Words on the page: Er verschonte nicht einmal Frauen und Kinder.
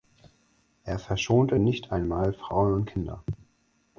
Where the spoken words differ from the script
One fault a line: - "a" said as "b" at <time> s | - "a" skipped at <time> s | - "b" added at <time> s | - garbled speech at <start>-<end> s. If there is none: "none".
none